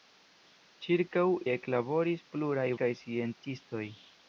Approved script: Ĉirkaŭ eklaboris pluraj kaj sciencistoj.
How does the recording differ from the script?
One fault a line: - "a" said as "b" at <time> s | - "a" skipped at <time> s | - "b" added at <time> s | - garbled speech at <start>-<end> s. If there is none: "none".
none